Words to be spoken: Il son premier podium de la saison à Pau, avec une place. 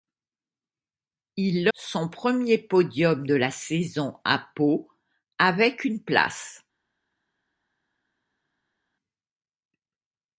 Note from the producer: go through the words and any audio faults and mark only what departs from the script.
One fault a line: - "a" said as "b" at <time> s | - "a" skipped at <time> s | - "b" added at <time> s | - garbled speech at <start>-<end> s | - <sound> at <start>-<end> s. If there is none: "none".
none